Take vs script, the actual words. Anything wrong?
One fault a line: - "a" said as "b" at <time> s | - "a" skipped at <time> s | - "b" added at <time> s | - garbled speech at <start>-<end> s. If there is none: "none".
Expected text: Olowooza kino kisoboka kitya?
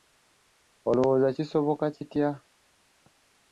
- "kino" skipped at 1.3 s